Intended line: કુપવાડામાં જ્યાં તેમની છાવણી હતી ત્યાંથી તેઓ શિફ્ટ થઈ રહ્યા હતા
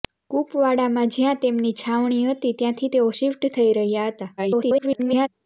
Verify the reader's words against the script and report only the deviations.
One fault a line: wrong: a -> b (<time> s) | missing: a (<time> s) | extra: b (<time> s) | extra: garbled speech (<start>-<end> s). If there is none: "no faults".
extra: garbled speech (4.4-5.3 s)